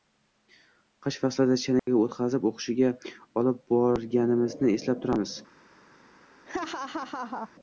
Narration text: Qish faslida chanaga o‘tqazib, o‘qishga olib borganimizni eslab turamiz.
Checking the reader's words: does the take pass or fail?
pass